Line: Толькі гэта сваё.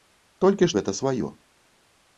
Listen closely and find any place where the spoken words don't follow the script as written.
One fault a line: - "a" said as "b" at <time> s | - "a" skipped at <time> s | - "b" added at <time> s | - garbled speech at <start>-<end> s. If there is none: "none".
none